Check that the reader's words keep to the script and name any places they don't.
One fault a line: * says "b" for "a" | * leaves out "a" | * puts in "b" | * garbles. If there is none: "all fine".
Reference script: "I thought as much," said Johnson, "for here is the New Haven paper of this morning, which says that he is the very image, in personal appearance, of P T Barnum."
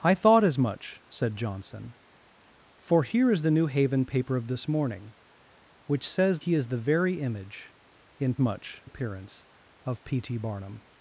* leaves out "that"
* says "much" for "personal"